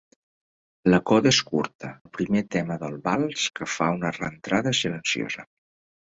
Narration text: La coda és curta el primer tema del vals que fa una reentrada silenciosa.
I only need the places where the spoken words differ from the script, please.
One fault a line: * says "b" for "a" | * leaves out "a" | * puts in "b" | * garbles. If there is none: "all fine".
all fine